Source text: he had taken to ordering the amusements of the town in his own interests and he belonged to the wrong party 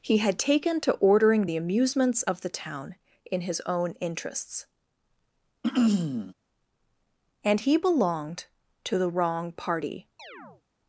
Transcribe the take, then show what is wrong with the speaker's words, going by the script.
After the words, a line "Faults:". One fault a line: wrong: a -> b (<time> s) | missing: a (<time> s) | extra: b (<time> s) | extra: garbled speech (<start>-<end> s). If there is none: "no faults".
he had taken to ordering the amusements of the town in his own interests and he belonged to the wrong party
Faults:
no faults